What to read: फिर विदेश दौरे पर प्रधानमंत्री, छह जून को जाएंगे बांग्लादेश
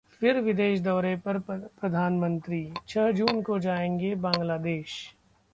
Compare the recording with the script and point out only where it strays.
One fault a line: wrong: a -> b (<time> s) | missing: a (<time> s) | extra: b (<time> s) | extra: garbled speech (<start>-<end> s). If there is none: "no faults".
no faults